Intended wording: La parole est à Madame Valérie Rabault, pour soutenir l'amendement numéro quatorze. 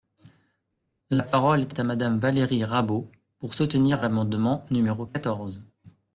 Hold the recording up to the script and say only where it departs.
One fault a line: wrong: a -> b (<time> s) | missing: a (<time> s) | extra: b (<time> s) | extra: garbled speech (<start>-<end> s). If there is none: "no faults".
extra: est (1.7 s)